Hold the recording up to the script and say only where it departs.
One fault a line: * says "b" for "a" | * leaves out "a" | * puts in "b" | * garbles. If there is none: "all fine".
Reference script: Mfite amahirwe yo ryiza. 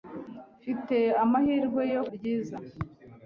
all fine